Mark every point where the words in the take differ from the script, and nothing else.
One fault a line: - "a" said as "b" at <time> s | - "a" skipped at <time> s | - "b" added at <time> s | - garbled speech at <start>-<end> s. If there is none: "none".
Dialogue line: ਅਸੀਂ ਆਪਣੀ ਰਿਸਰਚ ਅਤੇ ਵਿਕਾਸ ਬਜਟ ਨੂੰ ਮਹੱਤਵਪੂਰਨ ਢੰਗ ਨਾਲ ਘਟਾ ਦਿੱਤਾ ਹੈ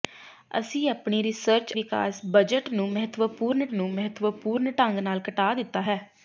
- "ਅਤੇ" skipped at 1.7 s
- "ਨੂੰ ਮਹੱਤਵਪੂਰਨ" added at 3.7 s